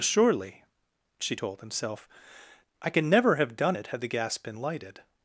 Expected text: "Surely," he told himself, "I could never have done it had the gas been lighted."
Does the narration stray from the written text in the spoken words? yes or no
yes